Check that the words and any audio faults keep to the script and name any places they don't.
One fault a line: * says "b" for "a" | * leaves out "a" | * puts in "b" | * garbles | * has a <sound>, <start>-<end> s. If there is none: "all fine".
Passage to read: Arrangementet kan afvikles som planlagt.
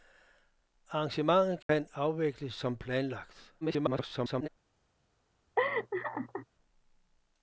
* has a dropout, 1.6-1.7 s
* garbles
* has a laugh, 5.6-6.5 s